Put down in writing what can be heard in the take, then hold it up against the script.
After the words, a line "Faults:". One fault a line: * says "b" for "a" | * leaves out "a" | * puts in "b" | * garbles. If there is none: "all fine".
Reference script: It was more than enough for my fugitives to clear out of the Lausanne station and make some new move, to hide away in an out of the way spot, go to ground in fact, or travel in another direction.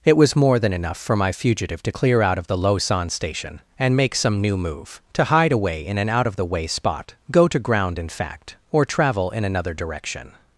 It was more than enough for my fugitive to clear out of the Lausanne station and make some new move, to hide away in an out of the way spot, go to ground in fact, or travel in another direction.
Faults:
* says "fugitive" for "fugitives"